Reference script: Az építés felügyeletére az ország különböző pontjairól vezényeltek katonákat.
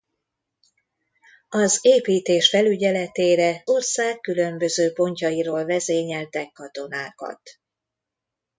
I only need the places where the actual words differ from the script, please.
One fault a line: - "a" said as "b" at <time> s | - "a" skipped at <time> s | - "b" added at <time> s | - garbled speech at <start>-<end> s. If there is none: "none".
- "az" skipped at 3.7 s